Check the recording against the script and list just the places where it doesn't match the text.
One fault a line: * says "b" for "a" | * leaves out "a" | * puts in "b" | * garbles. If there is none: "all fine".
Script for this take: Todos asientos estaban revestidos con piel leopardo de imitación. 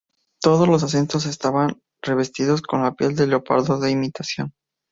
* puts in "los"
* puts in "de"